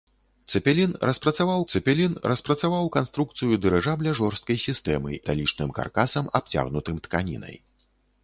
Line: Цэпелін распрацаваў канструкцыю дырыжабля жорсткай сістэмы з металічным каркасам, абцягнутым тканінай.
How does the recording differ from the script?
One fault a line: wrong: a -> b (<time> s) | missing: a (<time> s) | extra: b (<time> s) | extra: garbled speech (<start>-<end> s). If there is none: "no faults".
extra: цэпелін распрацаваў (1.7 s)
missing: з (5.1 s)